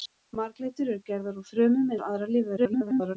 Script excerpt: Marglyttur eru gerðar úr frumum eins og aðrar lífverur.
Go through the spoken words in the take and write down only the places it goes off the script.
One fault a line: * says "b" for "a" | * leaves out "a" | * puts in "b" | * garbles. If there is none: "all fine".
* leaves out "eins"
* garbles